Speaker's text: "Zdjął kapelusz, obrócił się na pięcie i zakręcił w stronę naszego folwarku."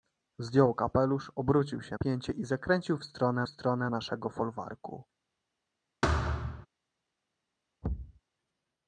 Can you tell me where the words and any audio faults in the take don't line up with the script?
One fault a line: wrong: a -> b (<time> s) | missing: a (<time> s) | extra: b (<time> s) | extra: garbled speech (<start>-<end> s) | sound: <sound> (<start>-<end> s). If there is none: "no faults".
missing: na (2.0 s)
extra: stronę (3.5 s)
sound: thud (6.0-6.7 s)
sound: thud (7.8-8.2 s)